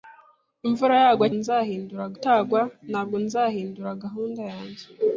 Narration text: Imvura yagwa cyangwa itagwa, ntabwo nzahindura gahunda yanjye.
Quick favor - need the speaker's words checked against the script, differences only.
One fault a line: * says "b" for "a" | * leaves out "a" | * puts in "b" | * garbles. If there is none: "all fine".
* says "nzahindura" for "cyangwa"